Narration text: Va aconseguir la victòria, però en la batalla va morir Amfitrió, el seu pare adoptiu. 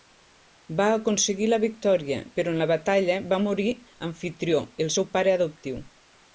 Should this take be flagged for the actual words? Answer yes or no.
no